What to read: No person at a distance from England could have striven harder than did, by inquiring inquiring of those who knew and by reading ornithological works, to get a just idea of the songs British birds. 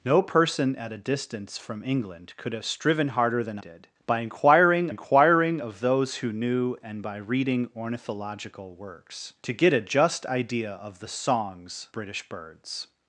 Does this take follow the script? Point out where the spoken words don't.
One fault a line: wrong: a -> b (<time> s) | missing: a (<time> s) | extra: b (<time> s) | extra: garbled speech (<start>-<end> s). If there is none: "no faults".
no faults